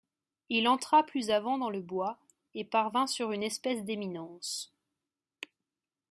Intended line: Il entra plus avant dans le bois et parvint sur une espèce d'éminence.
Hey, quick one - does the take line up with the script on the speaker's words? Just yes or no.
yes